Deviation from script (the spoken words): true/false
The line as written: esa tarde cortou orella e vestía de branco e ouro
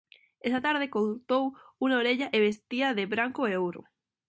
true